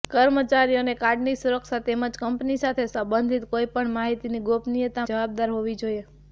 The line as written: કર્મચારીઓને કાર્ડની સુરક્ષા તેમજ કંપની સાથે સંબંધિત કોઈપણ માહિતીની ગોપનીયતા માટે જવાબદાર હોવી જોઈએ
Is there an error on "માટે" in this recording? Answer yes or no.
yes